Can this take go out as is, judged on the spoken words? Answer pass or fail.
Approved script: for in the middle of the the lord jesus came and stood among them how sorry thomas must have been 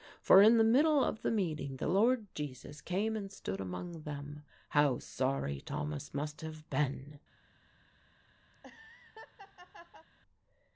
fail